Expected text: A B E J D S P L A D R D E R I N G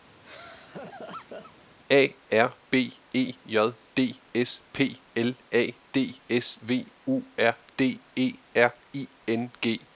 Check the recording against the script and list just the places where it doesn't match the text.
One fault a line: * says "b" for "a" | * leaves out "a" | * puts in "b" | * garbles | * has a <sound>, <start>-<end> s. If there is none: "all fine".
* has a laugh, 0.2-1.5 s
* puts in "R"
* puts in "S V U"